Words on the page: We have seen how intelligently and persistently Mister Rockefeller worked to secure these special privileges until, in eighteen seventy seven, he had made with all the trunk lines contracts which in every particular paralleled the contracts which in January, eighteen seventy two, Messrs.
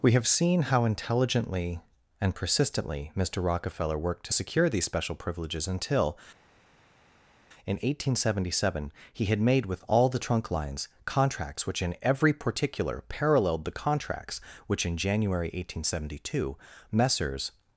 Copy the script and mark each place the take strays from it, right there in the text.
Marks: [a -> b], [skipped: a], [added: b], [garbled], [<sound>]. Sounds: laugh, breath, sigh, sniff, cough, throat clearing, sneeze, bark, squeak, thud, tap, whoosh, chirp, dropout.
We have seen how intelligently and persistently Mister Rockefeller worked to secure these special privileges until, in eighteen seventy seven, he had made with all the trunk lines contracts which in every particular paralleled the contracts which in January, eighteen seventy two, Messrs.